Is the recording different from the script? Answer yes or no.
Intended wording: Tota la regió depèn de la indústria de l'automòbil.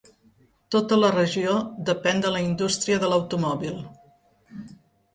no